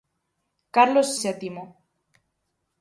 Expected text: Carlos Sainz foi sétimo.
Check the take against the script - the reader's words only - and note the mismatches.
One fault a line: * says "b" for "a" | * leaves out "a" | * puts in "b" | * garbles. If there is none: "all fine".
* leaves out "Sainz foi"